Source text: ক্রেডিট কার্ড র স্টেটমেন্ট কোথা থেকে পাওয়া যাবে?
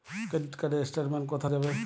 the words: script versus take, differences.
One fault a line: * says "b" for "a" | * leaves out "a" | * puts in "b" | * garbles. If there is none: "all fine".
* leaves out "থেকে পাওয়া"